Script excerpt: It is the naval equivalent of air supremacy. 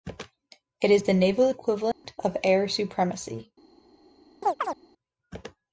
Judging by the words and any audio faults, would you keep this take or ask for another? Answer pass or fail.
fail